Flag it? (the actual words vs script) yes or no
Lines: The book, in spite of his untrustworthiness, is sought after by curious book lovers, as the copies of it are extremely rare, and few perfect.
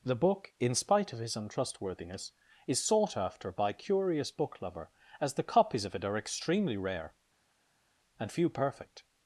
yes